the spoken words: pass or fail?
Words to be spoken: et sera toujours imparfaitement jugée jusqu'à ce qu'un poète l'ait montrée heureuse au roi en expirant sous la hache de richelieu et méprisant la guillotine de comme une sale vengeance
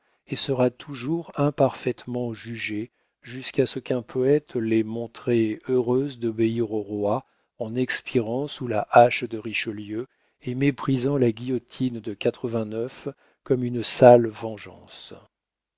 fail